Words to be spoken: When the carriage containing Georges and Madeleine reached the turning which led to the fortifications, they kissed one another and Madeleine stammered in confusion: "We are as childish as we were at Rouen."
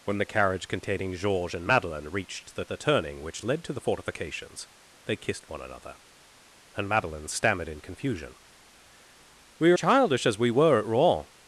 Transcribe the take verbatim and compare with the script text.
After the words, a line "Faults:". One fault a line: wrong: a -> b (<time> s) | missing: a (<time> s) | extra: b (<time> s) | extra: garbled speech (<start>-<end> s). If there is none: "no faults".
When the carriage containing Georges and Madeleine reached the the turning which led to the fortifications, they kissed one another and Madeleine stammered in confusion: "We are childish as we were at Rouen."
Faults:
extra: the (2.7 s)
missing: as (9.8 s)